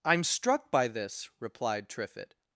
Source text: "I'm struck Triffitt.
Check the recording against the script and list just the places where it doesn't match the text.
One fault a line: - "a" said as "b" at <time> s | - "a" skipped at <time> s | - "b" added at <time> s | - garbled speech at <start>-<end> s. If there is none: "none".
- "by this replied" added at 0.7 s